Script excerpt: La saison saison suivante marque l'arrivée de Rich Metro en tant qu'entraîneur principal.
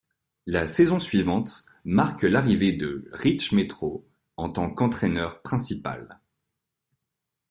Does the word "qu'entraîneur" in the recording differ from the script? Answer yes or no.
no